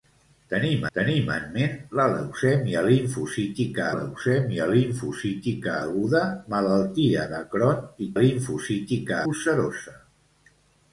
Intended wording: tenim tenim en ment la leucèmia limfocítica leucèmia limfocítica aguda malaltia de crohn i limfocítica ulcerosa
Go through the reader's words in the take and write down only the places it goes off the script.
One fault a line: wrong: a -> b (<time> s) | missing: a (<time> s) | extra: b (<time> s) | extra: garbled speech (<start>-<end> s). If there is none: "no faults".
no faults